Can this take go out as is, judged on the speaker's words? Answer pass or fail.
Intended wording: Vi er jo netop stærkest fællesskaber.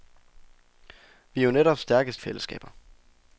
pass